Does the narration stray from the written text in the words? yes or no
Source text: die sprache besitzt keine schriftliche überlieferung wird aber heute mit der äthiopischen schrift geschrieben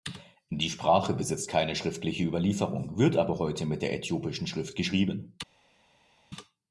no